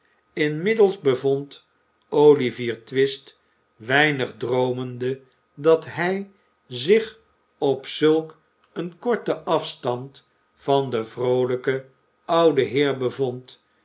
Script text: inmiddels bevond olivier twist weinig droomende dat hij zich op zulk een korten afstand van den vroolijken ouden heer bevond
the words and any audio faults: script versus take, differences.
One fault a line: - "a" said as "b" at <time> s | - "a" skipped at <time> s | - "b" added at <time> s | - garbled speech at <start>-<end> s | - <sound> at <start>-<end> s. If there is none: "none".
none